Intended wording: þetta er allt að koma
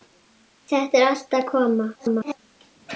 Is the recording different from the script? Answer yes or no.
yes